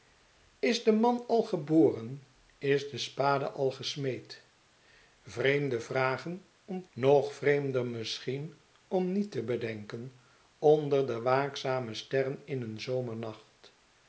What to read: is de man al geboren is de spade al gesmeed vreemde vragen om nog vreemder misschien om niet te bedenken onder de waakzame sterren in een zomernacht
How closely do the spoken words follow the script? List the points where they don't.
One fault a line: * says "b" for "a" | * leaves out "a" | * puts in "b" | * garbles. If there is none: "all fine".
all fine